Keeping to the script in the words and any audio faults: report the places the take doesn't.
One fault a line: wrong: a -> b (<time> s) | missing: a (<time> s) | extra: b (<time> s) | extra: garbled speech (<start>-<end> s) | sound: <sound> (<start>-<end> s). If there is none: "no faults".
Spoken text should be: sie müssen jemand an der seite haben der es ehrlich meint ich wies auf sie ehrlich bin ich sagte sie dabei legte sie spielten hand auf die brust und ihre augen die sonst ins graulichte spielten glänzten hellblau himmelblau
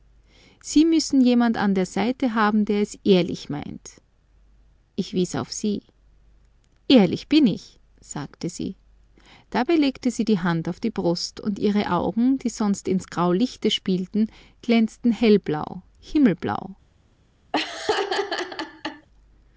wrong: spielten -> die (10.2 s)
sound: laugh (17.5-19.1 s)